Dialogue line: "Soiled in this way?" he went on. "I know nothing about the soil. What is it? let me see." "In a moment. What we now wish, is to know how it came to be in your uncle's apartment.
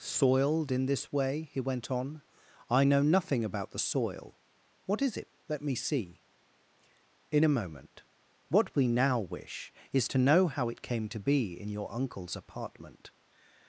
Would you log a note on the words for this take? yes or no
no